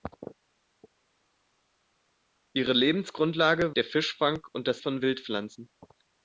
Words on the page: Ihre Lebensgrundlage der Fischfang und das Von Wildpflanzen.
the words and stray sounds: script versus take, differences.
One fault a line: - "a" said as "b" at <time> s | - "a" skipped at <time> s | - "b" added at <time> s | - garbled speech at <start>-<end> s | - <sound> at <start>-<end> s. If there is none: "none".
none